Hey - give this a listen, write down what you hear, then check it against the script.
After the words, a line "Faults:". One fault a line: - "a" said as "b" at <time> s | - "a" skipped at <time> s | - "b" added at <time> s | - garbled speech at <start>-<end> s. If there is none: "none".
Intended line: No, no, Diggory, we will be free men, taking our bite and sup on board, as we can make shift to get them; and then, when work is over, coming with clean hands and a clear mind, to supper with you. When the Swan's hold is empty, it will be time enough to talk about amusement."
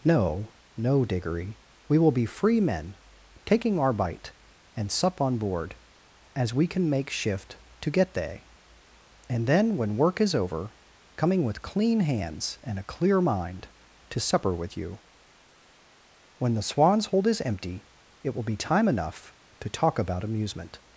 No, no, Diggory, we will be free men, taking our bite and sup on board, as we can make shift to get they; and then, when work is over, coming with clean hands and a clear mind, to supper with you. When the Swan's hold is empty, it will be time enough to talk about amusement."
Faults:
- "them" said as "they" at 8.2 s